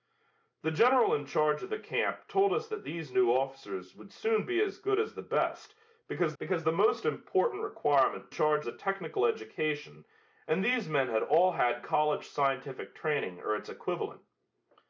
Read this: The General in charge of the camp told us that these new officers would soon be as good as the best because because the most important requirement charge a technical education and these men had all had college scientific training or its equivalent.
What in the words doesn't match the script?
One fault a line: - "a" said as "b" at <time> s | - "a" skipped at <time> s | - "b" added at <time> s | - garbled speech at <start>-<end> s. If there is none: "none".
none